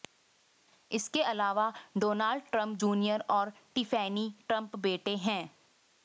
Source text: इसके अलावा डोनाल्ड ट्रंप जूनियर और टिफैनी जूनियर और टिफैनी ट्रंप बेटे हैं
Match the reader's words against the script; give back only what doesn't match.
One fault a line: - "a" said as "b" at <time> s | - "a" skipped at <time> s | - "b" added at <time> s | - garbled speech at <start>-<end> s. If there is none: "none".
- "जूनियर और टिफैनी" skipped at 4.3 s